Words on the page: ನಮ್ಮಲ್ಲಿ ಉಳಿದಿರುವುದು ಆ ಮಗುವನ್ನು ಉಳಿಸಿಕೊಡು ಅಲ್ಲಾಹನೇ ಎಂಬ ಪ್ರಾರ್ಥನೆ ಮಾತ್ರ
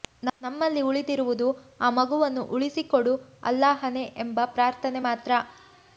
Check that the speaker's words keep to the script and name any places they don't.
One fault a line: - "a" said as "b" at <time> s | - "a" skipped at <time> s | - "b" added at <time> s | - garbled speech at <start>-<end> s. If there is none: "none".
none